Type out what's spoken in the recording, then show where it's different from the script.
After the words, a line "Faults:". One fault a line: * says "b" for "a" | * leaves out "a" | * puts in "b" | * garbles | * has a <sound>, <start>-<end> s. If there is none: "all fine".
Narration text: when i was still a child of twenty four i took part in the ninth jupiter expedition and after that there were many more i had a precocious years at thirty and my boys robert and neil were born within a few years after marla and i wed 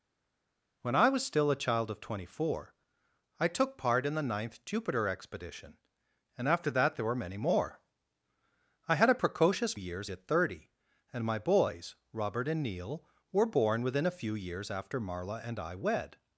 when i was still a child of twenty four i took part in the ninth jupiter expedition and after that there were many more i had a precocious years at thirty and my boys robert and neil were born within a few years after marla and i wed
Faults:
all fine